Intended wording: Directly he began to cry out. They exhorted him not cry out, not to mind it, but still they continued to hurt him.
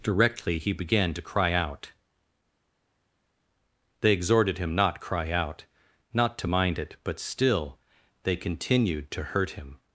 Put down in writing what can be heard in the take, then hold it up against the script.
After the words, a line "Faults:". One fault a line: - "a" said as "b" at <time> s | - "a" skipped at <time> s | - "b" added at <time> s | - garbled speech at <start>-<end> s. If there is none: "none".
Directly he began to cry out. They exhorted him not cry out, not to mind it, but still they continued to hurt him.
Faults:
none